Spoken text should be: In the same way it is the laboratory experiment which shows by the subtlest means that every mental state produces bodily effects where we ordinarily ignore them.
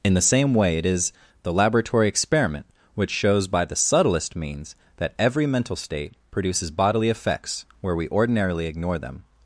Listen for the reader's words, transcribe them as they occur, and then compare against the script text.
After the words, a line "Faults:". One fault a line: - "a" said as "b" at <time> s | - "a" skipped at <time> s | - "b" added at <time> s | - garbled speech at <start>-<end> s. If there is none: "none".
In the same way it is the laboratory experiment which shows by the subtlest means that every mental state produces bodily effects where we ordinarily ignore them.
Faults:
none